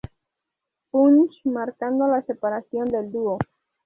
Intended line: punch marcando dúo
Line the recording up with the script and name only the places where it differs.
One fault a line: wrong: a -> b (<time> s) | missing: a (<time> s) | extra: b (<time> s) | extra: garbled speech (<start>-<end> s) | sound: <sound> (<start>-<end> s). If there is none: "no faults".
extra: la separación del (2.1 s)